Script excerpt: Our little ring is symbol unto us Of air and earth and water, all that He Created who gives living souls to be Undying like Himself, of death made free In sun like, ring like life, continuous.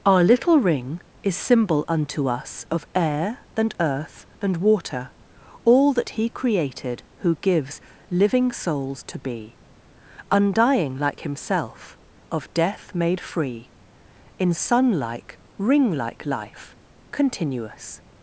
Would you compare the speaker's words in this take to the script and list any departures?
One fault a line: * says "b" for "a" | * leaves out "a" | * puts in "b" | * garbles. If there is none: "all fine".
all fine